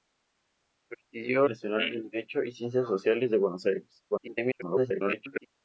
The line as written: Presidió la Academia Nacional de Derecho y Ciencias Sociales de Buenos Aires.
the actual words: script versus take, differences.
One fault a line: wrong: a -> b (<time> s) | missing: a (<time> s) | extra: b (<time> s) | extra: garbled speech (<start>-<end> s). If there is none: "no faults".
missing: la Academia (1.5 s)
extra: garbled speech (4.1-5.5 s)